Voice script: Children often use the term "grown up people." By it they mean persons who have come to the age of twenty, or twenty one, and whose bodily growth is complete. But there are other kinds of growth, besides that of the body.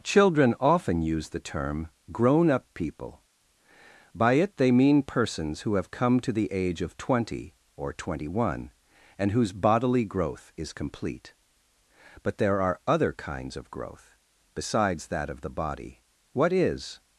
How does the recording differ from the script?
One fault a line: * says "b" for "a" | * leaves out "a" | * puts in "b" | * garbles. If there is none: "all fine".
* puts in "What is"